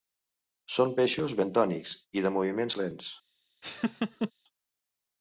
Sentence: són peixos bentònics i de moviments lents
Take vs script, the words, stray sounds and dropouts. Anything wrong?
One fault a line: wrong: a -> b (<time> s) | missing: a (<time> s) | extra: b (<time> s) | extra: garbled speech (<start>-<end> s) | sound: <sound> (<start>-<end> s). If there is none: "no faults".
sound: laugh (3.6-4.3 s)